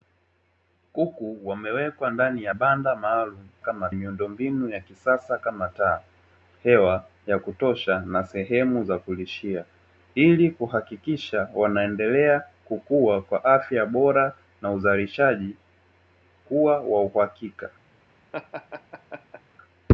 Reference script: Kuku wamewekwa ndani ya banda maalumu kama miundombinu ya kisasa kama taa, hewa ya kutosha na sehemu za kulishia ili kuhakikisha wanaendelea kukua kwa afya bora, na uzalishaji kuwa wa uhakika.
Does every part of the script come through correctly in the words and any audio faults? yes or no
no